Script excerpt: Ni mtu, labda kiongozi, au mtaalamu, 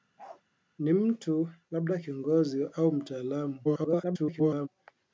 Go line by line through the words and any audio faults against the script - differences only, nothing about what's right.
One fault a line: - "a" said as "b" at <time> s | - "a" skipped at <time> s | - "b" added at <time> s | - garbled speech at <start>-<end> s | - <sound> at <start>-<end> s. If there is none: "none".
- bark at 0.2-0.4 s
- garbled speech at 3.6-4.7 s